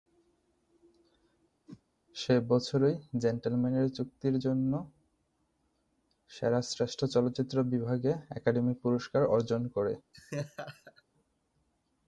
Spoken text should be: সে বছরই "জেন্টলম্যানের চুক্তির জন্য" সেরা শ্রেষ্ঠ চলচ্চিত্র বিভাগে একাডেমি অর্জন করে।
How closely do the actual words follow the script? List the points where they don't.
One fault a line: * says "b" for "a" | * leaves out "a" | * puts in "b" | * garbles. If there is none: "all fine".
* puts in "পুরস্কার"